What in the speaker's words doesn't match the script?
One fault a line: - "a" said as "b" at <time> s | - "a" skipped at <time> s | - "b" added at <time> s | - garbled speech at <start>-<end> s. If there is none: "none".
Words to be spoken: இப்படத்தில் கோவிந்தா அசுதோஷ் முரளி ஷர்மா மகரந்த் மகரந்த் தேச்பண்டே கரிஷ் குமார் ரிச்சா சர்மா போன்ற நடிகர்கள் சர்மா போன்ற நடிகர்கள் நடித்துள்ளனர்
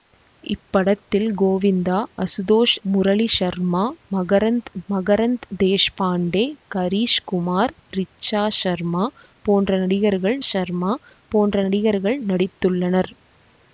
none